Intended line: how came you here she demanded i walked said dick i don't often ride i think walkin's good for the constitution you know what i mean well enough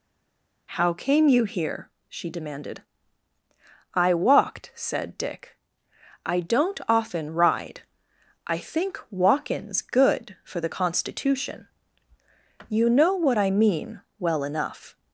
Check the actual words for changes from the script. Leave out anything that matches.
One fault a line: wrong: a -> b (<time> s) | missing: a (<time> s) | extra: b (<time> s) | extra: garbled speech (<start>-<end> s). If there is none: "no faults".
no faults